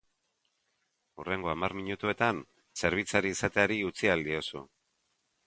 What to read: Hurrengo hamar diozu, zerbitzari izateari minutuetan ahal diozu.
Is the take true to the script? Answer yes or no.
no